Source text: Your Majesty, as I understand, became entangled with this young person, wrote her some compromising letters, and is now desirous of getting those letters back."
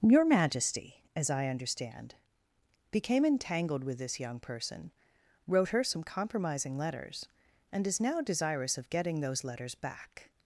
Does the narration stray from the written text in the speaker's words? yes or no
no